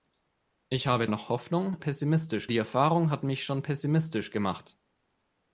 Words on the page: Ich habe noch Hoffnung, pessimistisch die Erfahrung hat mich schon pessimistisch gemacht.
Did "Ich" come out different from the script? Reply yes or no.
no